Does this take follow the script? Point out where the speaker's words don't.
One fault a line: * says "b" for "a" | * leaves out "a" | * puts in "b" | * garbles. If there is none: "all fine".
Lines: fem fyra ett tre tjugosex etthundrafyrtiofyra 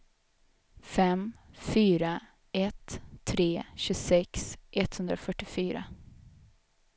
all fine